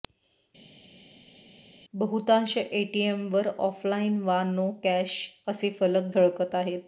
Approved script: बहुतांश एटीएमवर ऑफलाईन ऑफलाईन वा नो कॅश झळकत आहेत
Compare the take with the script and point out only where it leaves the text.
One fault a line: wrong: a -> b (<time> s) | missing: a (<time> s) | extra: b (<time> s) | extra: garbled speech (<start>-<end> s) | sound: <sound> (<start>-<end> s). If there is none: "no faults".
missing: ऑफलाईन (4.2 s)
extra: असे फलक (5.5 s)